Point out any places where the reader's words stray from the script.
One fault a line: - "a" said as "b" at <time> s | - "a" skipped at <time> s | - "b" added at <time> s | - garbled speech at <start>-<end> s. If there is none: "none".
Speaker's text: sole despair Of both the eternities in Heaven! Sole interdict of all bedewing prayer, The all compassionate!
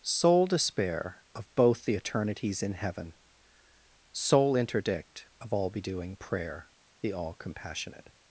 none